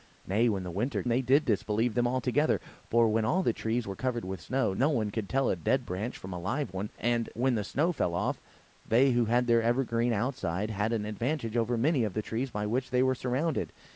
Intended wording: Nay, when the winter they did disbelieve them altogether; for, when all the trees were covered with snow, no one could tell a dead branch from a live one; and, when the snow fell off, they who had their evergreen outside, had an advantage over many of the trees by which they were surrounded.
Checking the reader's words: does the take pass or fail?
pass